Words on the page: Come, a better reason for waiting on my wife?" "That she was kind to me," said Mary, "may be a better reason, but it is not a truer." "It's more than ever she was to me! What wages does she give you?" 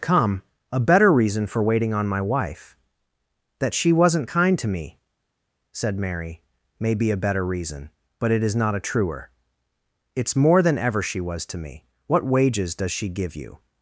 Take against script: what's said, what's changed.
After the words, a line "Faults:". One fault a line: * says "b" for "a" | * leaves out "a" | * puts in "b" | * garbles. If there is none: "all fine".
Come, a better reason for waiting on my wife?" "That she wasn't kind to me," said Mary, "may be a better reason, but it is not a truer." "It's more than ever she was to me! What wages does she give you?"
Faults:
* says "wasn't" for "was"